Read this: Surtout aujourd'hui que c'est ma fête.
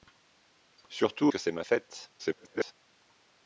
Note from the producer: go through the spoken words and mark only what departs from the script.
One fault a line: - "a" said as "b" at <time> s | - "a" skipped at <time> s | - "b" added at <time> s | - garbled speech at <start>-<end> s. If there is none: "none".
- "aujourd'hui" skipped at 1.3 s
- garbled speech at 2.2-2.7 s